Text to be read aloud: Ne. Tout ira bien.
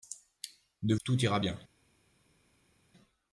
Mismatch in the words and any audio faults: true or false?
false